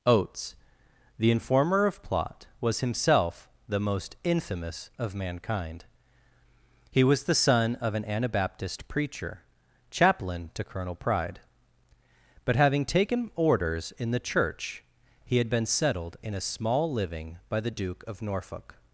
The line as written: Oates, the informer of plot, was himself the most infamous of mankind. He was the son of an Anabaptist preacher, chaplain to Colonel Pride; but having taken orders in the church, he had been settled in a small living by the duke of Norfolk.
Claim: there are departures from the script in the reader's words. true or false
false